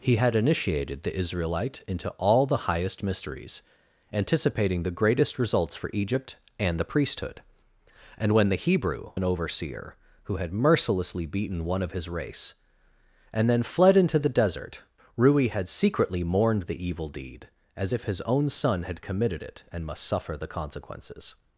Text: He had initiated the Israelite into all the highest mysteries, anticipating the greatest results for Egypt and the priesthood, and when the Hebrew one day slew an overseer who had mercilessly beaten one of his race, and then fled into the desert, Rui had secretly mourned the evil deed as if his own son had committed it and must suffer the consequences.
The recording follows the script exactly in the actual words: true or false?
false